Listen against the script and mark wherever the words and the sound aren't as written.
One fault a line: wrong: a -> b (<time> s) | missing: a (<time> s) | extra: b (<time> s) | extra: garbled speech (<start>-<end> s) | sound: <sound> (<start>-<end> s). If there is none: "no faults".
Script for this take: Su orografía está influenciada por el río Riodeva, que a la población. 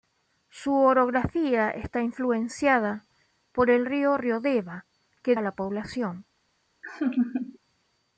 sound: laugh (6.8-7.6 s)